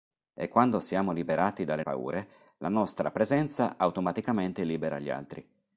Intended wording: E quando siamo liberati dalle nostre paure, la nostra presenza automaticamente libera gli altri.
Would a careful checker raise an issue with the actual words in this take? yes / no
yes